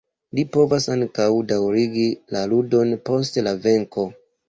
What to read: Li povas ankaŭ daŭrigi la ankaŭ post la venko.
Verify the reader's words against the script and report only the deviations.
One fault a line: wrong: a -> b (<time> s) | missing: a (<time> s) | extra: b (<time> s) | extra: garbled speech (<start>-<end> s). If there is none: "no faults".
wrong: ankaŭ -> ludon (2.6 s)